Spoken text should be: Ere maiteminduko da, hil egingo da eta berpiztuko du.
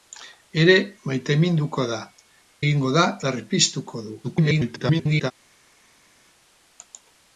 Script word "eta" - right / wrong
wrong